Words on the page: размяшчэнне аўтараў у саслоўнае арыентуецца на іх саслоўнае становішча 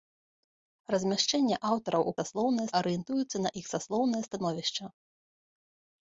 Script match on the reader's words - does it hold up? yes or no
yes